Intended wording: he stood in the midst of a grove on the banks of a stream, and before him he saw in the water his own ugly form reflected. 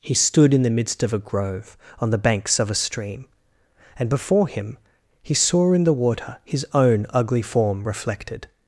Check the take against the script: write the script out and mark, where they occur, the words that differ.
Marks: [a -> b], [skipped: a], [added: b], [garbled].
he stood in the midst of a grove on the banks of a stream, and before him he saw in the water his own ugly form reflected.